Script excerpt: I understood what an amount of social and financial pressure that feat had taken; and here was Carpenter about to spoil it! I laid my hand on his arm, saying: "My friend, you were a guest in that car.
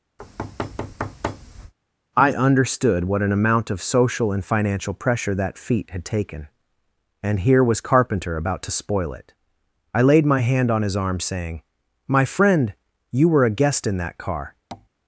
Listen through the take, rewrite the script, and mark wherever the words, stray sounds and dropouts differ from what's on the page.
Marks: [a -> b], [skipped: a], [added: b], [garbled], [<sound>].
[thud] I understood what an amount of social and financial pressure that feat had taken; and here was Carpenter about to spoil it! I laid my hand on his arm, saying: "My friend, you were a guest in that car. [tap]